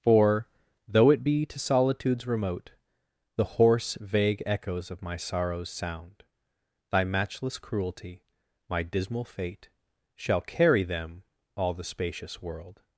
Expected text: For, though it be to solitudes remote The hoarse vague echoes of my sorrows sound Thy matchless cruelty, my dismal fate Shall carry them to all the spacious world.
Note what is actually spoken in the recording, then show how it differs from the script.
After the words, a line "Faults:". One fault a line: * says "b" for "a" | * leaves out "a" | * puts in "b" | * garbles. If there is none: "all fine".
For, though it be to solitudes remote The hoarse vague echoes of my sorrows sound Thy matchless cruelty, my dismal fate Shall carry them all the spacious world.
Faults:
* leaves out "to"